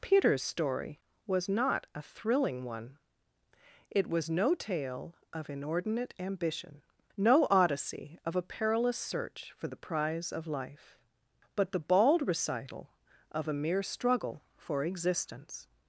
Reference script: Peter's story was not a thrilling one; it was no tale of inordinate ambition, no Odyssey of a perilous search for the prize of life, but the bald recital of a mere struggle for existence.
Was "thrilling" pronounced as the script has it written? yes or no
yes